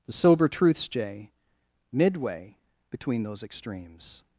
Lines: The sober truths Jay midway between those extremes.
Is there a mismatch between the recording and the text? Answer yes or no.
no